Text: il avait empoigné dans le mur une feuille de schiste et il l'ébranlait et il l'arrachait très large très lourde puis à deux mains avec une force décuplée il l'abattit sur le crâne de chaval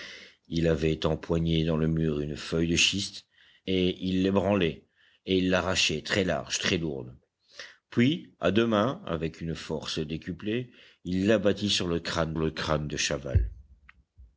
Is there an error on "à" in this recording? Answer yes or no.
no